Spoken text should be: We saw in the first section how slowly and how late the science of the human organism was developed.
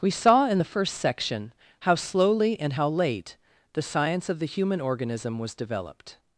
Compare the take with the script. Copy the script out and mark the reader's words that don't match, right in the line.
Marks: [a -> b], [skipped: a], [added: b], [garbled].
We saw in the first section how slowly and how late the science of the human organism was developed.